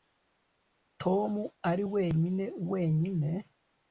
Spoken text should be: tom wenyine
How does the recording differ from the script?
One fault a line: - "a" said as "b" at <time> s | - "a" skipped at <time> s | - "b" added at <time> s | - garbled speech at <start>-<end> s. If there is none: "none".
- "ari wenyine" added at 1.7 s